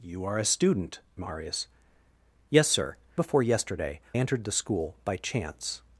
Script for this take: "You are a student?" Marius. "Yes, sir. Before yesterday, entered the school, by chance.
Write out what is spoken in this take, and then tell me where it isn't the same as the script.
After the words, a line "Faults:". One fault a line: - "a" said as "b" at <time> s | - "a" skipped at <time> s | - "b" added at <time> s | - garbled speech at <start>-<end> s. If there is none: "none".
"You are a student?" Marius. "Yes, sir. Before yesterday, entered the school, by chance.
Faults:
none